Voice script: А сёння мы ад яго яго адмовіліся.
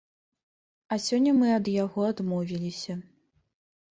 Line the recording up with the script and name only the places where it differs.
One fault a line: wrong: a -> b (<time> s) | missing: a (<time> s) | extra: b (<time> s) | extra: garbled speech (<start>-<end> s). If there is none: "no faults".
missing: яго (2.1 s)